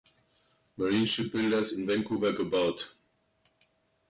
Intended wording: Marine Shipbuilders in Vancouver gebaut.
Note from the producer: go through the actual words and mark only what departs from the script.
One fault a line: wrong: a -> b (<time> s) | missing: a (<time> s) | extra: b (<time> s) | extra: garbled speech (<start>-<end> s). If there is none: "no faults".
no faults